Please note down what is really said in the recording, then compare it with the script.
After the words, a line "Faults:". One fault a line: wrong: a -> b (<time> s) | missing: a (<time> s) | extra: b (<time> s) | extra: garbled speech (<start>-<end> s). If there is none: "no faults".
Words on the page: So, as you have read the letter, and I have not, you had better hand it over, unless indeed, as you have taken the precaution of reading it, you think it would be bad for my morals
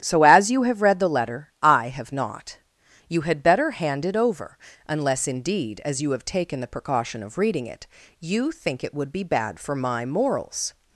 So, as you have read the letter, I have not, you had better hand it over, unless indeed, as you have taken the precaution of reading it, you think it would be bad for my morals
Faults:
missing: and (1.5 s)